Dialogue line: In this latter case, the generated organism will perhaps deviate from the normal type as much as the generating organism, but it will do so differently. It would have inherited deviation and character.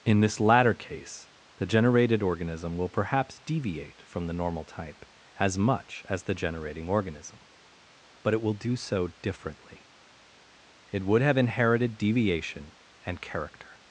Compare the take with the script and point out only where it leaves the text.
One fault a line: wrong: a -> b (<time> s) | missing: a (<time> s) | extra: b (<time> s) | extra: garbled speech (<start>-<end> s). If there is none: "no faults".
no faults